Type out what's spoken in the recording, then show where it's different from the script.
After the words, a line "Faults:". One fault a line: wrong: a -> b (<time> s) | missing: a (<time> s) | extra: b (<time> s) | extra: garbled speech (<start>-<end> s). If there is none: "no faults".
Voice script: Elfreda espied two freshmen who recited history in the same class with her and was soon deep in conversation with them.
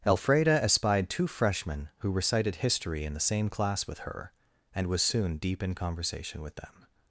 Elfreda espied two freshmen who recited history in the same class with her and was soon deep in conversation with them.
Faults:
no faults